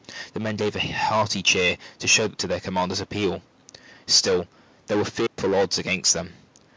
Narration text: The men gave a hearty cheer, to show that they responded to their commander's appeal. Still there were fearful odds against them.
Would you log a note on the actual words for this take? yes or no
yes